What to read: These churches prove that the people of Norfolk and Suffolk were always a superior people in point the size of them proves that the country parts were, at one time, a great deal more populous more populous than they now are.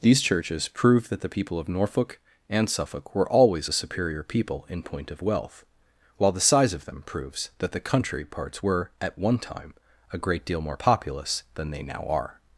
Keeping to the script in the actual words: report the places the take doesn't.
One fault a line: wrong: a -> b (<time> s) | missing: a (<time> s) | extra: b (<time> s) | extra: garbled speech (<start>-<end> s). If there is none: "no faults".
extra: of wealth while (5.1 s)
missing: more populous (11.4 s)